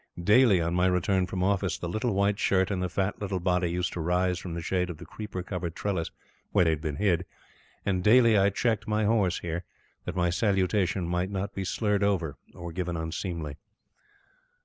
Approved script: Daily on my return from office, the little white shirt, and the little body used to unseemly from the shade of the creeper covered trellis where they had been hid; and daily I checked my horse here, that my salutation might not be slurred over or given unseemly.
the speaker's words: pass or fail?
fail